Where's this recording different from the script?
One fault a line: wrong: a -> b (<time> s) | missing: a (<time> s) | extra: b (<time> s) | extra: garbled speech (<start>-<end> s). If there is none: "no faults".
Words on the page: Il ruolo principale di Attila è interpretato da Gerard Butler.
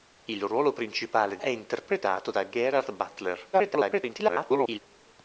missing: di Attila (1.4 s)
extra: garbled speech (3.5-4.8 s)